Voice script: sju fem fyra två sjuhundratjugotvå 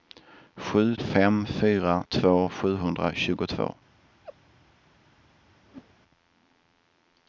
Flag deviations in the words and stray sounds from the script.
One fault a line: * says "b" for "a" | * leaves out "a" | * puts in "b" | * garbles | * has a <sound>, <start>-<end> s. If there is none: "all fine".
* has a laugh, 4.2-4.4 s
* has a whoosh, 5.7-5.9 s